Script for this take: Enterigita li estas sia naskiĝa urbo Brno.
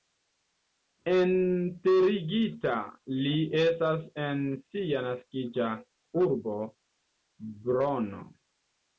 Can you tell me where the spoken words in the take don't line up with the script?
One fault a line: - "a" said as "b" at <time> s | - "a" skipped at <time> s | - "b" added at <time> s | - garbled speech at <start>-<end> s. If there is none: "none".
- "en" added at 4.2 s